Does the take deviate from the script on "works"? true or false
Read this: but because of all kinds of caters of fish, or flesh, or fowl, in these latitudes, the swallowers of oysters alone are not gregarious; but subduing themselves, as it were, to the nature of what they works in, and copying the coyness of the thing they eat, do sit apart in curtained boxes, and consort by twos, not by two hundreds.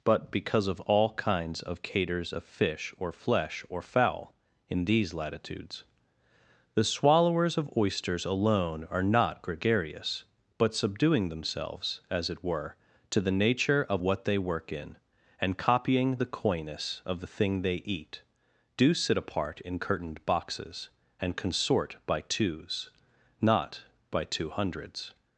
true